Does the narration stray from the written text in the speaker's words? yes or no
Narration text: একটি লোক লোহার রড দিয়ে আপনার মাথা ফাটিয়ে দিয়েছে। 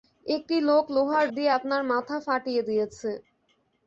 yes